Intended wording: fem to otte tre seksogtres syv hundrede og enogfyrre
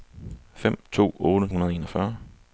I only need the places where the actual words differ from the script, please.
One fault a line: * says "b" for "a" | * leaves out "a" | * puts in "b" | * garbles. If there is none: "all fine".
* leaves out "tre seksogtres syv"